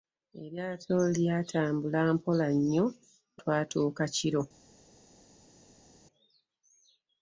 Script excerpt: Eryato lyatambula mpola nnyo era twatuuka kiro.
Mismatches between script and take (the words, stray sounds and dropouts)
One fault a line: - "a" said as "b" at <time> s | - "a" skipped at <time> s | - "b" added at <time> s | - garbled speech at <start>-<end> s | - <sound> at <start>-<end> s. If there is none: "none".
- "era" skipped at 2.9 s